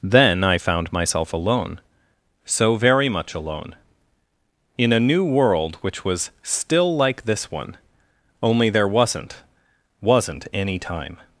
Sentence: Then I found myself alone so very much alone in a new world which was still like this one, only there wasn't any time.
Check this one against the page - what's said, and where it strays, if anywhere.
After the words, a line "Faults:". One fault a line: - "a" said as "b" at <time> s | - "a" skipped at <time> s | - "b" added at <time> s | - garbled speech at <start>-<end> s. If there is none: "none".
Then I found myself alone so very much alone in a new world which was still like this one, only there wasn't wasn't any time.
Faults:
- "wasn't" added at 10.0 s